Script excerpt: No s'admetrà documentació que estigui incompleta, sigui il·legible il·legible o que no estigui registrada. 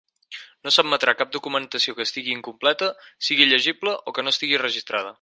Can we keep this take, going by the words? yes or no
no